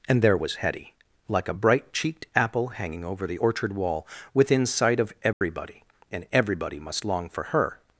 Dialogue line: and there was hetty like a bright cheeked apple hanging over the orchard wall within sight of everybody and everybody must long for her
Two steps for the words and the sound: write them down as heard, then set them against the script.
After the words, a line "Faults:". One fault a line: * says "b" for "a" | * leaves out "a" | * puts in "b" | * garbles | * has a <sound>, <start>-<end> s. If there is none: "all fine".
and there was hetty like a bright cheeked apple hanging over the orchard wall within sight of everybody and everybody must long for her
Faults:
* has a dropout, 5.3-5.4 s